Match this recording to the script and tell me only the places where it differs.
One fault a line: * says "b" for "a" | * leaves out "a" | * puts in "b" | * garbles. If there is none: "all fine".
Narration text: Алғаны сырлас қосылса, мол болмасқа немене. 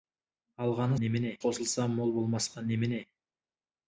* says "немене" for "сырлас"